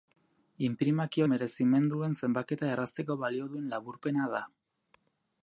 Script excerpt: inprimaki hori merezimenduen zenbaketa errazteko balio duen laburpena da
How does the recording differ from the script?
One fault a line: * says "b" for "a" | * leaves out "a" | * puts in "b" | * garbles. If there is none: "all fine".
* leaves out "hori"